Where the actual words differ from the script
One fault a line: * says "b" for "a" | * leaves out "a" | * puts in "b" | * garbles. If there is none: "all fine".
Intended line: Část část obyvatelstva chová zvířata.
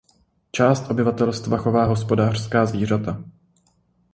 * leaves out "část"
* puts in "hospodářská"